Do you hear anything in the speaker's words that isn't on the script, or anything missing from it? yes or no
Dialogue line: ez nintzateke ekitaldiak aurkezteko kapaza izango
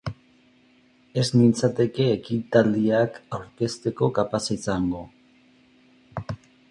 no